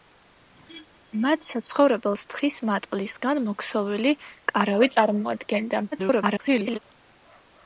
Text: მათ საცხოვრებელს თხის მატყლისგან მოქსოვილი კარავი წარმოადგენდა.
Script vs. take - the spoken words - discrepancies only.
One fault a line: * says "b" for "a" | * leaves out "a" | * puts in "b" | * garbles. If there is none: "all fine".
* garbles